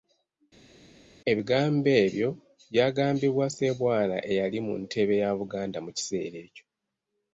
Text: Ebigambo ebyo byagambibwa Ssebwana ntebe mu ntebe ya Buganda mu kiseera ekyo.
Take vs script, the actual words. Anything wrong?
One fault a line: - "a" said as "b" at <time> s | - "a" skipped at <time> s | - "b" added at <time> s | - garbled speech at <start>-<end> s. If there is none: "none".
- "ntebe" said as "eyali" at 4.3 s